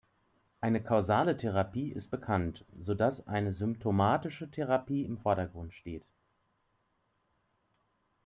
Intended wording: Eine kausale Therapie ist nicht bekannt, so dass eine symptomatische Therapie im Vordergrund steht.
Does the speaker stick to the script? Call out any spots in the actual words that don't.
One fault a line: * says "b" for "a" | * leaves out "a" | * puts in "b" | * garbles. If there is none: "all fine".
* leaves out "nicht"